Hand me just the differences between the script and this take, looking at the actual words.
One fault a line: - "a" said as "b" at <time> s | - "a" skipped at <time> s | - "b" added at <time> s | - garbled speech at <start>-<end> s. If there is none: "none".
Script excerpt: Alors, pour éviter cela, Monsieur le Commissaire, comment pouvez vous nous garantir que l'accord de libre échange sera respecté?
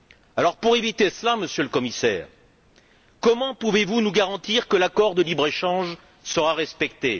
none